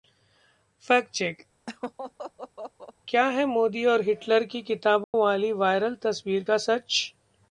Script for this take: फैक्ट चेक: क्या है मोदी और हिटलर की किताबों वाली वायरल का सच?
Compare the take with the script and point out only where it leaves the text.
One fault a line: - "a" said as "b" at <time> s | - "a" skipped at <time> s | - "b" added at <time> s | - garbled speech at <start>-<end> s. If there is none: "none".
- "तस्वीर" added at 6.0 s